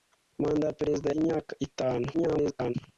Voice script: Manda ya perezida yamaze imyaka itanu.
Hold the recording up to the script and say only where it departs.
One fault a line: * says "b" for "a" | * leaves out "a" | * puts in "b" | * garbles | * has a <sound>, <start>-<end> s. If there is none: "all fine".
* leaves out "yamaze"
* garbles